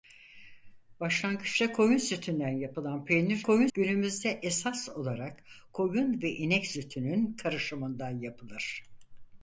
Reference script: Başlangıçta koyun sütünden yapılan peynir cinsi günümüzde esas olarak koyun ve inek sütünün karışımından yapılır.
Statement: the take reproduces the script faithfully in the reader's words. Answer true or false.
false